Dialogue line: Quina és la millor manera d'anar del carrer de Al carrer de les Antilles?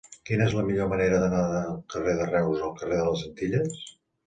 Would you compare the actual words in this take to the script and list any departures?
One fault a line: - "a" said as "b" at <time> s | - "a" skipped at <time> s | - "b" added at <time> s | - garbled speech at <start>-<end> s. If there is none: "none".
- "Reus" added at 2.3 s